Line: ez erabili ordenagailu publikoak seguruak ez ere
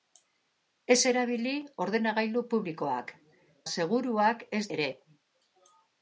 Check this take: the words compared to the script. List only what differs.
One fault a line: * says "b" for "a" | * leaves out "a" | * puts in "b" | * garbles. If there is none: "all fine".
all fine